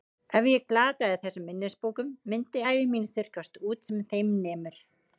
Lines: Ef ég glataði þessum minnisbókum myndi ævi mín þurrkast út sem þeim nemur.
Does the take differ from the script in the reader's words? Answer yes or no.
no